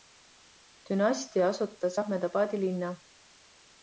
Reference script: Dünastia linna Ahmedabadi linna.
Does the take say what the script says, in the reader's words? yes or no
no